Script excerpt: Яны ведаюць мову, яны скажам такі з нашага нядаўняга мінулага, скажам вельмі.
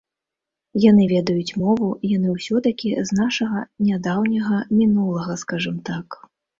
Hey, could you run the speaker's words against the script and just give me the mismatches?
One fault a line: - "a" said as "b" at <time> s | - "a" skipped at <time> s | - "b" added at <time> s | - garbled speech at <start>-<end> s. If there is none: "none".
- "скажам" said as "ўсё" at 2.4 s
- "вельмі" said as "так" at 5.9 s